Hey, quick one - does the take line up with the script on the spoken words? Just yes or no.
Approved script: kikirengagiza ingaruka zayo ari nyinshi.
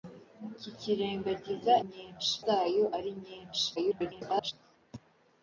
no